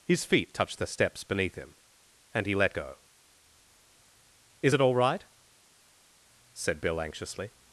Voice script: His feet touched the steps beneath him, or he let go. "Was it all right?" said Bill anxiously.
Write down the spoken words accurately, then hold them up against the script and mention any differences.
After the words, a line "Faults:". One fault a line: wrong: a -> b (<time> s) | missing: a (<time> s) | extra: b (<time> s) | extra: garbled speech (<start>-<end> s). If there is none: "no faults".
His feet touched the steps beneath him, and he let go. "Is it all right?" said Bill anxiously.
Faults:
wrong: or -> and (2.3 s)
wrong: Was -> Is (4.6 s)